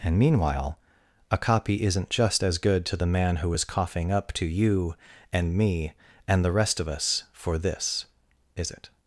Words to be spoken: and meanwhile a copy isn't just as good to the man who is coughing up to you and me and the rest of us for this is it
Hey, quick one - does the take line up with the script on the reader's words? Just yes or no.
yes